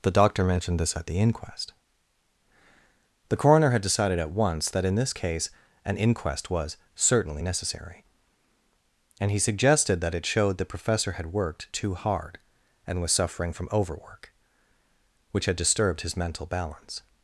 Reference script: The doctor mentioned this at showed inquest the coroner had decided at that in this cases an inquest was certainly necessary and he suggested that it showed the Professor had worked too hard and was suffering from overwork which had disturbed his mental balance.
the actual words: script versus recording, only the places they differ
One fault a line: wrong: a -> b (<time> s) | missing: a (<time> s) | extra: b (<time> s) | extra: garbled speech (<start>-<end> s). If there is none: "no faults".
wrong: showed -> the (1.1 s)
extra: once (4.3 s)
wrong: cases -> case (5.1 s)